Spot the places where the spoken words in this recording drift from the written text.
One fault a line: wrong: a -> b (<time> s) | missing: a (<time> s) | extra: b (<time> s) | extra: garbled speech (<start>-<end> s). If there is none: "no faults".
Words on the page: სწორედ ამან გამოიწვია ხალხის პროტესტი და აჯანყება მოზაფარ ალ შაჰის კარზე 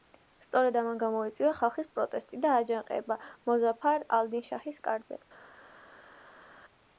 extra: დინ (4.4 s)